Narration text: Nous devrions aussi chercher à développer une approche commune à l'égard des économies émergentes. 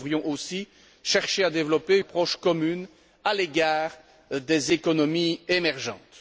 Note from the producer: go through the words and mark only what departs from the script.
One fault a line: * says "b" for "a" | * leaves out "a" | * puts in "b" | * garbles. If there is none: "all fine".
* leaves out "une"